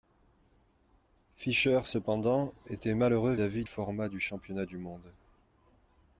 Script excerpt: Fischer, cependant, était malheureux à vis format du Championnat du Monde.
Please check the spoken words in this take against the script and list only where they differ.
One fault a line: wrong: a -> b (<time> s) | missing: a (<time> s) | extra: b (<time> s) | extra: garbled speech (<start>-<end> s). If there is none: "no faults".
no faults